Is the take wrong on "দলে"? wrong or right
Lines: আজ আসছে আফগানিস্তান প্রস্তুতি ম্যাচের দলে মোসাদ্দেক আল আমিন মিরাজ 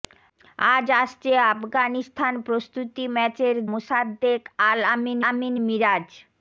wrong